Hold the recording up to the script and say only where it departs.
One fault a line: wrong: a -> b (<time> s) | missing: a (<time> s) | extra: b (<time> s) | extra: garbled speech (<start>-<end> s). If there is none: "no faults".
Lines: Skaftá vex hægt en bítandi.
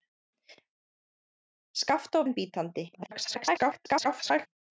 missing: vex hægt (2.2 s)
extra: garbled speech (2.9-4.5 s)